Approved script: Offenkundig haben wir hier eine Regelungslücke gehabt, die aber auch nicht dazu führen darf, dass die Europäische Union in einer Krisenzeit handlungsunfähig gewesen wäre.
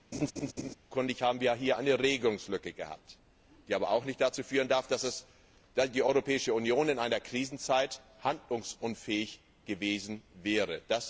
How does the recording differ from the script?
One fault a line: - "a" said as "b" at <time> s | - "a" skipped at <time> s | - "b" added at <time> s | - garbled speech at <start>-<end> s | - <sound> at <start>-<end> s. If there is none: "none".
- laugh at 0.1-0.7 s